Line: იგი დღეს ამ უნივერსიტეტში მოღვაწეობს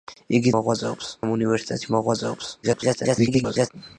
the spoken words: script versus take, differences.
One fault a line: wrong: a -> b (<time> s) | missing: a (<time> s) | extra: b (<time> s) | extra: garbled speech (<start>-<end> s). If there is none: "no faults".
wrong: დღეს -> მოღვაწეობს (0.6 s)
extra: garbled speech (2.6-3.7 s)